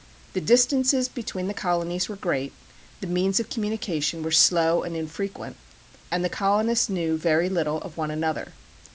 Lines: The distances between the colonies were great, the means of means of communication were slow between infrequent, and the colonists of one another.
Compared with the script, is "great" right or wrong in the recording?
right